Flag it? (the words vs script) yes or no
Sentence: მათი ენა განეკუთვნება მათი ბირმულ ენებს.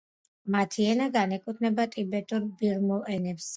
yes